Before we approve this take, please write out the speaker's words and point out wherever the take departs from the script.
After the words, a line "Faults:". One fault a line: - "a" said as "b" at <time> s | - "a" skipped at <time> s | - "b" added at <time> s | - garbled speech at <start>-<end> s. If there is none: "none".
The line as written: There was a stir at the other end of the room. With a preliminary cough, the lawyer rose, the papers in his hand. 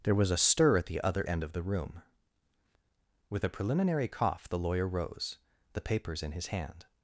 There was a stir at the other end of the room. With a preliminary cough, the lawyer rose, the papers in his hand.
Faults:
none